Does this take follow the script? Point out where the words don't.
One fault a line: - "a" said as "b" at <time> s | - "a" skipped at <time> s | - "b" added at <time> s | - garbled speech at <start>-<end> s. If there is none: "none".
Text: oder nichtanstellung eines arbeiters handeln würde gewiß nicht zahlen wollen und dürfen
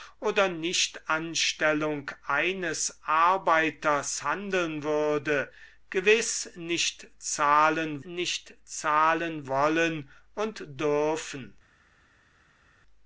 - "nicht zahlen" added at 8.0 s